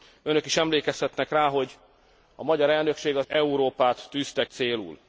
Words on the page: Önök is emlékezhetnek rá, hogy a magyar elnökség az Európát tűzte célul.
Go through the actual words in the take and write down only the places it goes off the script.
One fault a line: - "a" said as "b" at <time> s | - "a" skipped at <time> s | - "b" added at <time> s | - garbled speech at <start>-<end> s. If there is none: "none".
none